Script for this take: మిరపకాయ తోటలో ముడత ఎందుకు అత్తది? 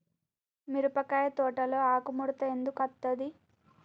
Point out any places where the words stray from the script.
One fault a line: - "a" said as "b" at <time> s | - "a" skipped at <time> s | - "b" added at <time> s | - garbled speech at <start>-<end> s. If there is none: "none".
- "ఆకు" added at 1.9 s